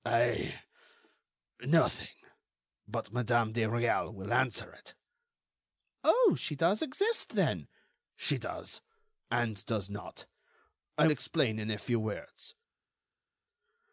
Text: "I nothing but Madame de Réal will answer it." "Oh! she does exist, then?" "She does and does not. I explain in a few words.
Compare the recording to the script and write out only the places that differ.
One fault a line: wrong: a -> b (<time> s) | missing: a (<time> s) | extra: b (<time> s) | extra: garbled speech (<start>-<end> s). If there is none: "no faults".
no faults